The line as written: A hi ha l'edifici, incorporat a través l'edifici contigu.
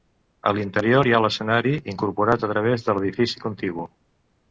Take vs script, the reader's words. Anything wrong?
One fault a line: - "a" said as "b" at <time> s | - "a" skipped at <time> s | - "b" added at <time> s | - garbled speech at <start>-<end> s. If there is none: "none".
- "l'interior" added at 0.6 s
- "l'edifici" said as "l'escenari" at 1.2 s
- "de" added at 2.9 s